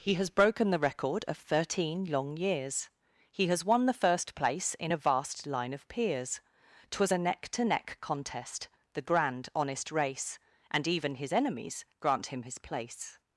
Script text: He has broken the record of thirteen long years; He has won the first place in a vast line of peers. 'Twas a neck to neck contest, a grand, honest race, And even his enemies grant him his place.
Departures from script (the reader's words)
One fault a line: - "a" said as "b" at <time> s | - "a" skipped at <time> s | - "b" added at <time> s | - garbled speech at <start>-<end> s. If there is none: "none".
- "a" said as "the" at 8.9 s